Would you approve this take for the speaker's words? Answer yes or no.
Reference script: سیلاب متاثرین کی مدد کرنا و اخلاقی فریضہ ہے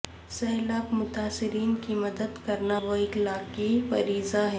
yes